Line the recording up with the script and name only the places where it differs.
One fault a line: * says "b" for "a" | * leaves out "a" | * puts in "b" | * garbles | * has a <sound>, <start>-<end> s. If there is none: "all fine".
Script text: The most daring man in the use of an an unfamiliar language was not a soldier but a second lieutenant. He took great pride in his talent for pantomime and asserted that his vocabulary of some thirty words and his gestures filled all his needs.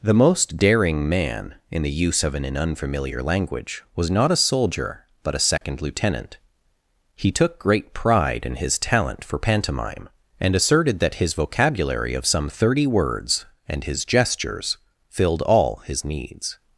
* has a dropout, 5.6-5.6 s